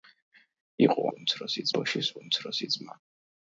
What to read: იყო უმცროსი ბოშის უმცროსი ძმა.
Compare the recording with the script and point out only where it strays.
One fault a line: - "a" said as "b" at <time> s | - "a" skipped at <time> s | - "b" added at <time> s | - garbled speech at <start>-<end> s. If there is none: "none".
none